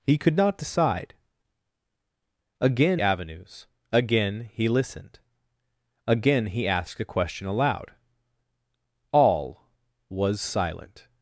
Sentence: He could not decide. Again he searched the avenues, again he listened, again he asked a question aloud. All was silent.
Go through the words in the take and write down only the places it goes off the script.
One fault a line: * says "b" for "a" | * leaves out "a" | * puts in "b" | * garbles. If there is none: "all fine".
* leaves out "he searched the"